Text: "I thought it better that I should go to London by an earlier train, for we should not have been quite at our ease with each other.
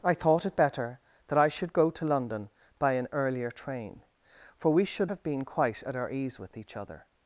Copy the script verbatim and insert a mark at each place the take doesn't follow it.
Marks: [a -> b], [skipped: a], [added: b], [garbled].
"I thought it better that I should go to London by an earlier train, for we should [skipped: not] have been quite at our ease with each other.